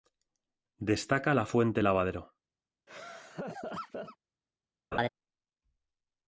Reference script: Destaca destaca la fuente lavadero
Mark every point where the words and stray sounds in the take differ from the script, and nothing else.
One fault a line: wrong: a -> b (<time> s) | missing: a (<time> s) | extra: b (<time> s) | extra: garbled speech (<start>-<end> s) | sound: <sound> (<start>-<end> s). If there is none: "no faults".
missing: destaca (1.4 s)
sound: laugh (2.9-4.2 s)
sound: laugh (4.9-5.1 s)